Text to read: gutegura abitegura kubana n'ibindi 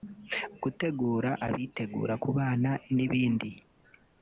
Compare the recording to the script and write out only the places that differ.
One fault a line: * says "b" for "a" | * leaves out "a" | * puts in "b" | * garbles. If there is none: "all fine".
all fine